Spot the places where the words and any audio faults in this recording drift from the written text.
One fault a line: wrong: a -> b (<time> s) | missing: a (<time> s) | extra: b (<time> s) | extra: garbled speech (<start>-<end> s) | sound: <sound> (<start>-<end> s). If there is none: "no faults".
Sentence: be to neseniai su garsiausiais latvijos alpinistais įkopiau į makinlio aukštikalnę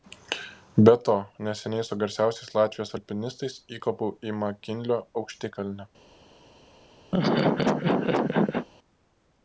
sound: laugh (7.1-8.7 s)